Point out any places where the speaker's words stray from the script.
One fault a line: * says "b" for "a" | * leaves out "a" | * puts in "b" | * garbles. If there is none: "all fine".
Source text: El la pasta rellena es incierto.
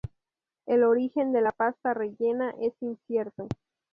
* puts in "origen de"